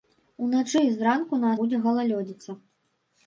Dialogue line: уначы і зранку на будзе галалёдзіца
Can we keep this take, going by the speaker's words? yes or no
yes